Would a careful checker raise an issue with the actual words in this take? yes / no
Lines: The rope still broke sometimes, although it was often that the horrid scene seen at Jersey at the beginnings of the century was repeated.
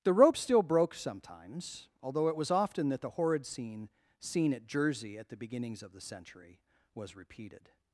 no